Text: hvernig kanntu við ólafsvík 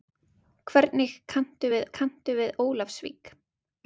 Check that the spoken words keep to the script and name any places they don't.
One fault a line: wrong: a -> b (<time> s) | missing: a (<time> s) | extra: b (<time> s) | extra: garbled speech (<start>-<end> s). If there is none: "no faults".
extra: kanntu við (2.0 s)